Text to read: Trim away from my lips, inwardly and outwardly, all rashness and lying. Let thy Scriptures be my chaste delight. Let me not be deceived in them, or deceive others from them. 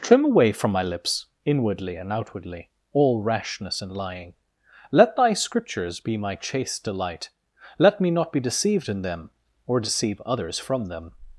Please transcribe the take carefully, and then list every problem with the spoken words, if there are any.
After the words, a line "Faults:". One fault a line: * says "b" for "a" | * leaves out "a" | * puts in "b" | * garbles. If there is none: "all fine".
Trim away from my lips, inwardly and outwardly, all rashness and lying. Let thy Scriptures be my chaste delight. Let me not be deceived in them, or deceive others from them.
Faults:
all fine